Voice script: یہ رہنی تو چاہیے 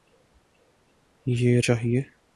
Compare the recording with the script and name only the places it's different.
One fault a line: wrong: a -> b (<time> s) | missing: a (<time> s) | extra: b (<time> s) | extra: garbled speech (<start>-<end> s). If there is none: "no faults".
missing: رہنی تو (1.6 s)